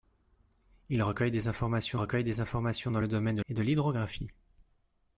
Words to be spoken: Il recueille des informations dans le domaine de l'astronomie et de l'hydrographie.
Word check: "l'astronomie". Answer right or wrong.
wrong